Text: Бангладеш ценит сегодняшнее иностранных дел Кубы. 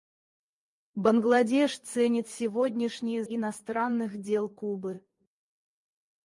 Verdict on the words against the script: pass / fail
pass